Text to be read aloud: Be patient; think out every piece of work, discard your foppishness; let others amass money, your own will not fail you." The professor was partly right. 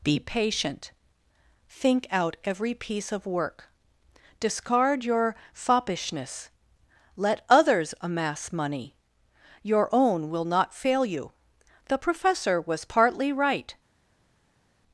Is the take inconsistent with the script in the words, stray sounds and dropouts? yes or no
no